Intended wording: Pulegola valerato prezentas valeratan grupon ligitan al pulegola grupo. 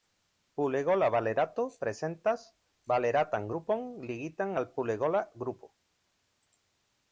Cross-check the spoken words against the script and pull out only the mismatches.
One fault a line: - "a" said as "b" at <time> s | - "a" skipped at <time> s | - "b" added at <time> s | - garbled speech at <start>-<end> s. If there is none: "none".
none